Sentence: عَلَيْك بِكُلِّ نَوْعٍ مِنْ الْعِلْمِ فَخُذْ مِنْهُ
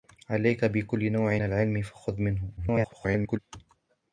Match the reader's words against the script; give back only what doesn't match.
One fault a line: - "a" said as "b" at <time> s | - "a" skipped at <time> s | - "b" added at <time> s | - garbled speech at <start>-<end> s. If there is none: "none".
- "مِنْ" skipped at 1.4 s
- garbled speech at 2.6-3.4 s